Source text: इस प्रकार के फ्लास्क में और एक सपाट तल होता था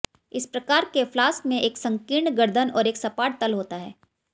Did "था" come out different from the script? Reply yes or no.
yes